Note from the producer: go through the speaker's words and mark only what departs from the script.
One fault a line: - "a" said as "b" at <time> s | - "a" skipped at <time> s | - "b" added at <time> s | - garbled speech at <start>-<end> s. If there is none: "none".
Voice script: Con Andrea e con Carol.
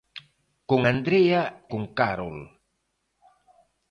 - "e" skipped at 1.7 s